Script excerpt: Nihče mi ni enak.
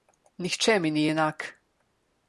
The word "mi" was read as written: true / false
true